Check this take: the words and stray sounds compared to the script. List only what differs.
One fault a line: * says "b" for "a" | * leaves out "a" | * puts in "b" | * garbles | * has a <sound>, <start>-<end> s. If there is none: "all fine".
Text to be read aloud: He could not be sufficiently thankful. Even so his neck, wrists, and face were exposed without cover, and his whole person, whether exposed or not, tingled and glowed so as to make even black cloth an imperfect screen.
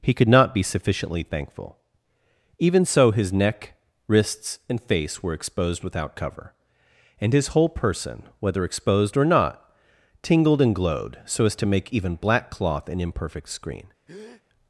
* has a breath, 14.1-14.4 s